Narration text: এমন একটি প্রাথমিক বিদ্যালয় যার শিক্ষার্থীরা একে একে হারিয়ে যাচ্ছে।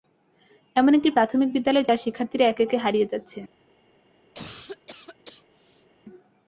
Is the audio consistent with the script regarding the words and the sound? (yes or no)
no